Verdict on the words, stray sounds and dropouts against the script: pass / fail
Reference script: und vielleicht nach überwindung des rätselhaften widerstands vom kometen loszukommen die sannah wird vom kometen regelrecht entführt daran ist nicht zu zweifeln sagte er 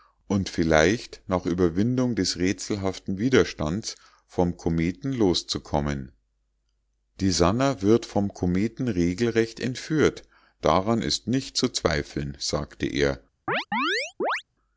fail